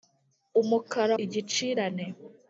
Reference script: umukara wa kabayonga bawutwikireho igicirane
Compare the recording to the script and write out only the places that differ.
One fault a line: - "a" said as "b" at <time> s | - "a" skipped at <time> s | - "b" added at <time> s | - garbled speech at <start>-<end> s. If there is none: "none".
- "wa kabayonga bawutwikireho" skipped at 1.1 s